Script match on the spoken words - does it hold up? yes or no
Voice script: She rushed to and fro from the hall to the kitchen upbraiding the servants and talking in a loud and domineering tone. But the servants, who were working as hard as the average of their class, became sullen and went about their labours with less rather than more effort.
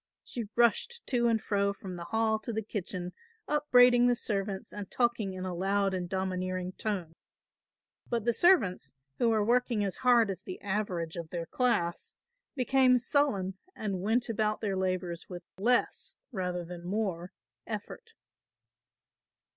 yes